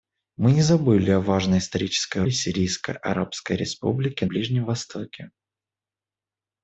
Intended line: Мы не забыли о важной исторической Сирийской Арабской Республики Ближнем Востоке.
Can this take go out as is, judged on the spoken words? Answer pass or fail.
pass